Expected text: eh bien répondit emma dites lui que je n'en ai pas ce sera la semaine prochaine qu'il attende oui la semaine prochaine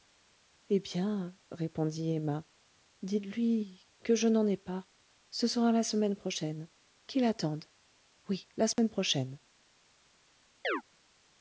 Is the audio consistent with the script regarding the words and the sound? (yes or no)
no